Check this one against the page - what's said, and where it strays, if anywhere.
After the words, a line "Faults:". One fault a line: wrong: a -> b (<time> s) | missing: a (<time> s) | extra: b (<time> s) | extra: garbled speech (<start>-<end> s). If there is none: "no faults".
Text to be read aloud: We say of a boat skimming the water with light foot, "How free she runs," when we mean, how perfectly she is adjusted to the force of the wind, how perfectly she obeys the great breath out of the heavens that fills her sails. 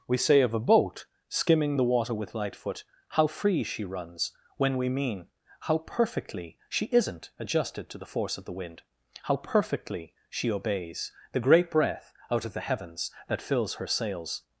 We say of a boat skimming the water with light foot, "How free she runs," when we mean, how perfectly she isn't adjusted to the force of the wind, how perfectly she obeys the great breath out of the heavens that fills her sails.
Faults:
wrong: is -> isn't (6.9 s)